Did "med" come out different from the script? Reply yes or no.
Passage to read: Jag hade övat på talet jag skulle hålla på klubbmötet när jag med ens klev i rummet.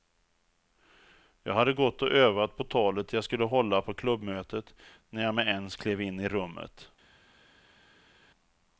no